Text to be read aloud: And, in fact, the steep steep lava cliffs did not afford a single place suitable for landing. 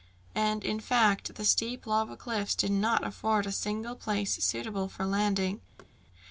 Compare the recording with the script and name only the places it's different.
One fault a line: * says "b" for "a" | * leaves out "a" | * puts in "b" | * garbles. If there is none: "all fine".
* leaves out "steep"